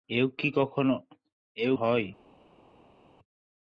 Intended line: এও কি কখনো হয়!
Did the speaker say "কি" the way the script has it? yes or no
no